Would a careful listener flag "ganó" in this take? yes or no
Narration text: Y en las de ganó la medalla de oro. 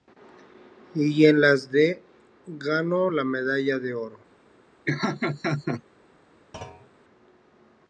no